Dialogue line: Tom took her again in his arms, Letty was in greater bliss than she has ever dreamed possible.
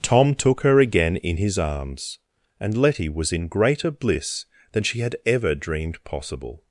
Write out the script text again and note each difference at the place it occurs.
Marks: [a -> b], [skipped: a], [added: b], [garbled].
Tom took her again in his arms, [added: and] Letty was in greater bliss than she [has -> had] ever dreamed possible.